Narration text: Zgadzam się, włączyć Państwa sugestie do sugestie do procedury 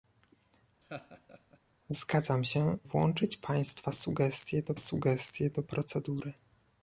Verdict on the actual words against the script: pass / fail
pass